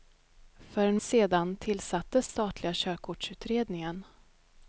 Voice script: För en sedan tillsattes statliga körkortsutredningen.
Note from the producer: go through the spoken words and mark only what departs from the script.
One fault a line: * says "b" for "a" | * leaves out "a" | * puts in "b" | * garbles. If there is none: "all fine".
all fine